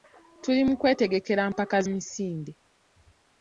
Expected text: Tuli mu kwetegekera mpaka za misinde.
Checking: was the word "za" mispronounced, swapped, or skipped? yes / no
yes